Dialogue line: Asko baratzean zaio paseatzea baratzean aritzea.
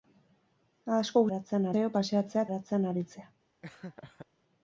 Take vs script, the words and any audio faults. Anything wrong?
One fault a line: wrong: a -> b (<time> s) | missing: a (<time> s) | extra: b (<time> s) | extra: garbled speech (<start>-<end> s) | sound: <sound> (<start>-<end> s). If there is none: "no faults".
sound: laugh (3.6-4.3 s)